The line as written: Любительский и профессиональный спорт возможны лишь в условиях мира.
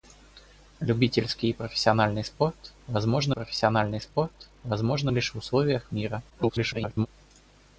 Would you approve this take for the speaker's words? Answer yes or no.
no